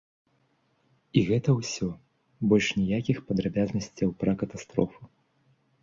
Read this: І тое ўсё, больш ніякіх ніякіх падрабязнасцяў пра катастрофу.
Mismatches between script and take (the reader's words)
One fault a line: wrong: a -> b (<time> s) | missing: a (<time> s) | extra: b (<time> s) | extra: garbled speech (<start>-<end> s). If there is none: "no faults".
wrong: тое -> гэта (1.3 s)
missing: ніякіх (3.2 s)